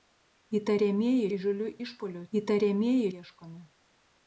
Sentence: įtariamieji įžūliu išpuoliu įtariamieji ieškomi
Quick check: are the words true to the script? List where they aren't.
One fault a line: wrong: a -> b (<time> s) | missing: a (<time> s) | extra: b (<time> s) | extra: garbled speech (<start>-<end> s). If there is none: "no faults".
no faults